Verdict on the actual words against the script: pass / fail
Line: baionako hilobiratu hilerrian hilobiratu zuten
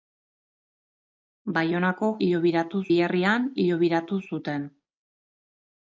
pass